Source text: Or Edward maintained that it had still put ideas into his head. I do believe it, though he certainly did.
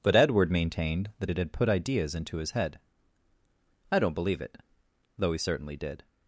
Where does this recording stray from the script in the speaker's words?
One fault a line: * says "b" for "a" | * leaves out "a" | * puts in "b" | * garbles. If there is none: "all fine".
* says "But" for "Or"
* leaves out "still"
* says "don't" for "do"